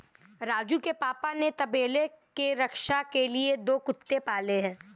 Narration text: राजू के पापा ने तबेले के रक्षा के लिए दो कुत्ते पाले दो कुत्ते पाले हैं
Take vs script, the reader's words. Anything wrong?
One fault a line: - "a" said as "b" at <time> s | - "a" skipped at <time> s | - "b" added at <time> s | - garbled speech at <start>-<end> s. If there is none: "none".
- "दो कुत्ते पाले" skipped at 4.6 s